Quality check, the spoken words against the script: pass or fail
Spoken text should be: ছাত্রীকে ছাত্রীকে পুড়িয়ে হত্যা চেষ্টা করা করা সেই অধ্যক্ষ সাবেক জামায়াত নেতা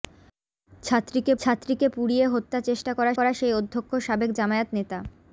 pass